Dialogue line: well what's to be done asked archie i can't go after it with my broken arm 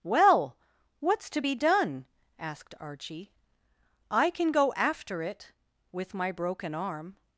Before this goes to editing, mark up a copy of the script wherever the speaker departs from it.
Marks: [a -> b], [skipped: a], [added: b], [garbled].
well what's to be done asked archie i [can't -> can] go after it with my broken arm